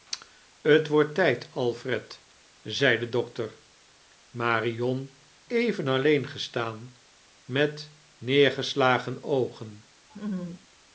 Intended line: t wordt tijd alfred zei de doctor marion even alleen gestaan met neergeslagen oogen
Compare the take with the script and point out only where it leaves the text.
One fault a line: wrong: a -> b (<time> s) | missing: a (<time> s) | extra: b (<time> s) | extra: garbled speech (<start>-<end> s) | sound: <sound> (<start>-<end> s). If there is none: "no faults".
sound: laugh (10.1-10.7 s)